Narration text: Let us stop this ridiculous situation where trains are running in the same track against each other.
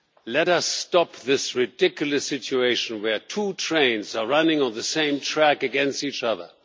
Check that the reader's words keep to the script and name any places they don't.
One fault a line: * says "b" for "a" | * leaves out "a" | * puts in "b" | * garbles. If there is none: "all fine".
* puts in "two"
* says "on" for "in"